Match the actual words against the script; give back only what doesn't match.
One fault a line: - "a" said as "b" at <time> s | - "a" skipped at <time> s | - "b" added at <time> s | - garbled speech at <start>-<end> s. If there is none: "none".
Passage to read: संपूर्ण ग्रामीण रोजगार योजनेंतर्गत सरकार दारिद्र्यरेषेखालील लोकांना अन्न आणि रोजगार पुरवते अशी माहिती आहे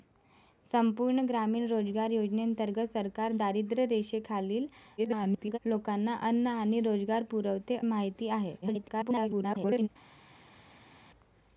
- garbled speech at 5.0-5.6 s
- "अशी" skipped at 7.8 s
- garbled speech at 8.6-9.9 s